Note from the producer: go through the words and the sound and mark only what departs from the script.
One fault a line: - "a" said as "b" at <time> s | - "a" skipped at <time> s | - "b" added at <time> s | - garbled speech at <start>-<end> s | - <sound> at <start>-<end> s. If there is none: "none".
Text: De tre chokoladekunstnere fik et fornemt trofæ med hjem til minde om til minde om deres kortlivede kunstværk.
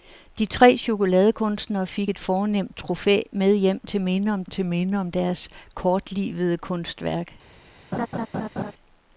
- laugh at 7.9-8.7 s